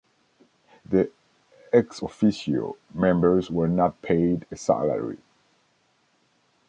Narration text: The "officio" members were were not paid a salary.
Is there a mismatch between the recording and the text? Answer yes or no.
yes